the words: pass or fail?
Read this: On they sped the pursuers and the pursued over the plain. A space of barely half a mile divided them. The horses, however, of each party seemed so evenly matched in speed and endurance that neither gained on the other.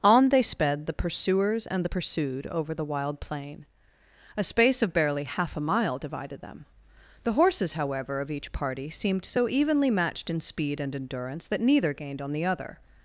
fail